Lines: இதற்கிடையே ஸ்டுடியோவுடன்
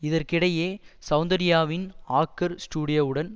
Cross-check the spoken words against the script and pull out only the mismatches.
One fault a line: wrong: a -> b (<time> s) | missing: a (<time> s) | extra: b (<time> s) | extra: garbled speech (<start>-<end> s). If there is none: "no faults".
extra: சௌந்தர்யாவின் ஆக்கர் (1.1 s)